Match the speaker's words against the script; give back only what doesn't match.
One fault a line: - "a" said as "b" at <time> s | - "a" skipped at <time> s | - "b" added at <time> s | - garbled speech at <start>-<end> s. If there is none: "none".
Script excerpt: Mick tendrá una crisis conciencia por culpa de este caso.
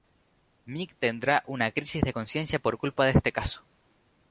- "de" added at 2.0 s